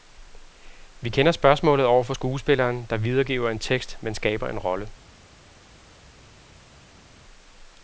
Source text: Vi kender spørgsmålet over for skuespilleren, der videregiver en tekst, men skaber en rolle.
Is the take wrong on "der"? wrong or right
right